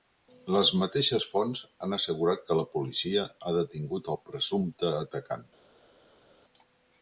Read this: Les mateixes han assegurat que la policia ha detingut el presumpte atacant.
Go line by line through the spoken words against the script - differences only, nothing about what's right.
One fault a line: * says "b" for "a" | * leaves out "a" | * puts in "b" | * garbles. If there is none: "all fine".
* puts in "fonts"